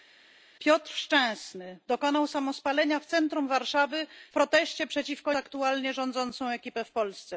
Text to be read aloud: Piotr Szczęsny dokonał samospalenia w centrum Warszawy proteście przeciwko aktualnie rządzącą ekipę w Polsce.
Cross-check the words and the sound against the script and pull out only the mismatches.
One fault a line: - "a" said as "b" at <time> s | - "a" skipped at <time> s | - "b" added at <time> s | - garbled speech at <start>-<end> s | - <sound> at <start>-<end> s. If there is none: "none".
none